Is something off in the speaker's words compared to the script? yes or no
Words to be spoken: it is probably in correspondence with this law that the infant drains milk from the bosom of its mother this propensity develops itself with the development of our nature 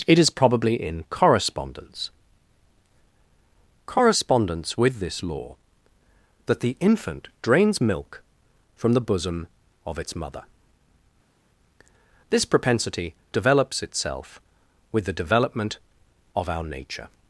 yes